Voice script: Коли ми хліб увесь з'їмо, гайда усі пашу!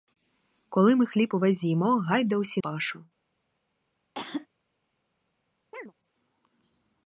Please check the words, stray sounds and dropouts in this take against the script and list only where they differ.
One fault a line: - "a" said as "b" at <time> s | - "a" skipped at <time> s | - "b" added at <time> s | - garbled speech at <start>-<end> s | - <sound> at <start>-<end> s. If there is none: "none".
- cough at 4.1-4.5 s
- chirp at 5.7-5.9 s